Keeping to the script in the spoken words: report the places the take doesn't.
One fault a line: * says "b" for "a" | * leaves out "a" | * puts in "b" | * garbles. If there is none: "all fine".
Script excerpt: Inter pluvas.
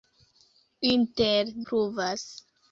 all fine